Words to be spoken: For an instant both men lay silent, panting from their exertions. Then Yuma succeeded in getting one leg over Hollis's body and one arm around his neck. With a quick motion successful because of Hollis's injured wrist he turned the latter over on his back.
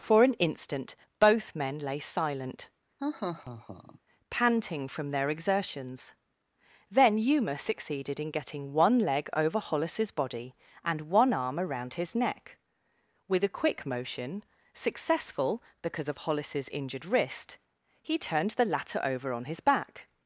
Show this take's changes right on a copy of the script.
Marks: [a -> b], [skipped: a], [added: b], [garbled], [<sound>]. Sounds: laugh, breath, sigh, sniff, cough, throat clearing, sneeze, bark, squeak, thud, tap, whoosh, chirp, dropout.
For an instant both men lay silent, [laugh] panting from their exertions. Then Yuma succeeded in getting one leg over Hollis's body and one arm around his neck. With a quick motion successful because of Hollis's injured wrist he turned the latter over on his back.